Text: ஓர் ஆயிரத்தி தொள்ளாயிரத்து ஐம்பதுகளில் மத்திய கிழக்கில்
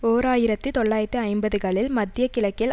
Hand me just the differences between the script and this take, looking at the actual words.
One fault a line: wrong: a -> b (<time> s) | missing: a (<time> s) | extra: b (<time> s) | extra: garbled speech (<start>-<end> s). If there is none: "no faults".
no faults